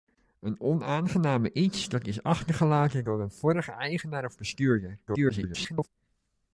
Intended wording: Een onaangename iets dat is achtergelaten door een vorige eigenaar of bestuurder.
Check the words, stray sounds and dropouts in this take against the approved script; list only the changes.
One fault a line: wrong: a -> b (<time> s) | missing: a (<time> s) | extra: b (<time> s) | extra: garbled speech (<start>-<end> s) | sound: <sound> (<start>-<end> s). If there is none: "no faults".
extra: garbled speech (5.1-5.9 s)